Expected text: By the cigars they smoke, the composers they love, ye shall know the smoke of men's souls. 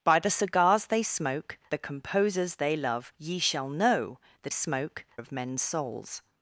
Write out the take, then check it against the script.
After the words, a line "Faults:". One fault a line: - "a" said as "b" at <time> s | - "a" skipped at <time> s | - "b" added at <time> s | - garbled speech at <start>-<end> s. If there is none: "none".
By the cigars they smoke, the composers they love, ye shall know the smoke of men's souls.
Faults:
none